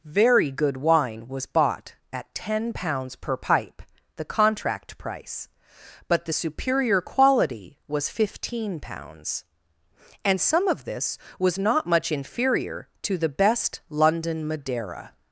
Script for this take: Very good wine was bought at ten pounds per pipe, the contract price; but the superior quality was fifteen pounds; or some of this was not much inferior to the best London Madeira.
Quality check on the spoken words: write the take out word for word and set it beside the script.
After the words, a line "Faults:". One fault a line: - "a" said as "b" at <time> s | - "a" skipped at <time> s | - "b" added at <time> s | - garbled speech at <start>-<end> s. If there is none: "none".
Very good wine was bought at ten pounds per pipe, the contract price; but the superior quality was fifteen pounds; and some of this was not much inferior to the best London Madeira.
Faults:
- "or" said as "and" at 10.2 s